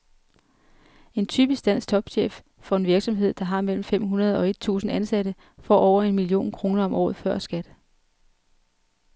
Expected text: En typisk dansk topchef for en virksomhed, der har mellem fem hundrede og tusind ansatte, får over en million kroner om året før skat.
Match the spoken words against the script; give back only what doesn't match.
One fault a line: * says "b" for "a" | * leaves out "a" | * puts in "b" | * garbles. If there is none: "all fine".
* puts in "et"